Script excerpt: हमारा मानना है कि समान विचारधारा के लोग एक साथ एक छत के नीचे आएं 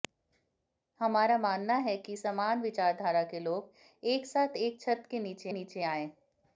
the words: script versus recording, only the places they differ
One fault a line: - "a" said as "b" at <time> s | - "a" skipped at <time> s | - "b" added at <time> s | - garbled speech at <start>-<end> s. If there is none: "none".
- "नीचे" added at 5.5 s